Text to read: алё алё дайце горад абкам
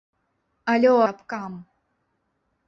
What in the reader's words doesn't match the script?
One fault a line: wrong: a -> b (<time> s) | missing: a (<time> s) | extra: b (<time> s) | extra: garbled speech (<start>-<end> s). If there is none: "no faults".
missing: алё дайце горад (0.9 s)